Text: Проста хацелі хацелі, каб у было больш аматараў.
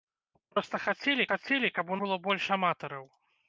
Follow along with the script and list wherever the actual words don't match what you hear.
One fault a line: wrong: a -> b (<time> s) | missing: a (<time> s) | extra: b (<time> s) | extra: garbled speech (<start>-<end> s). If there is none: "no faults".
no faults